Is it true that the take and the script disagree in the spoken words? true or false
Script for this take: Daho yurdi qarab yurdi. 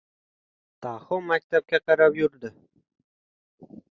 true